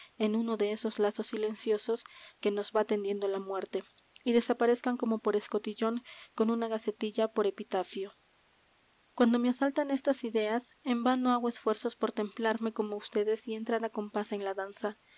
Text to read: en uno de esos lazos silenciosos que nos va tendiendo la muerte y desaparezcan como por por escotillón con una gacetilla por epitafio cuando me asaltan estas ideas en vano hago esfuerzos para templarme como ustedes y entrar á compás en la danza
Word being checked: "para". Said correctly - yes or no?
no